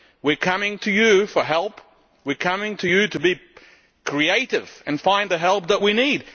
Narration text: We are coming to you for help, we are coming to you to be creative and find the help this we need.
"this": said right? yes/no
no